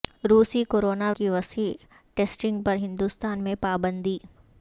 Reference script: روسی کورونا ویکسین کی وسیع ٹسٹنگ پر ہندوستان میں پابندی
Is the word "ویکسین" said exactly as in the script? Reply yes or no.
no